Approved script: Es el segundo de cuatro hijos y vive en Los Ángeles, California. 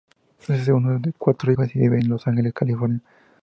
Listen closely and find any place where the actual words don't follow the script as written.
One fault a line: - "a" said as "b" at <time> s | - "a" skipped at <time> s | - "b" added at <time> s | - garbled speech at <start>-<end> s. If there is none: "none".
none